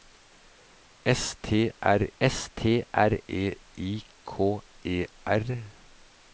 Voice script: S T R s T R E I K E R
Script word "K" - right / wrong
right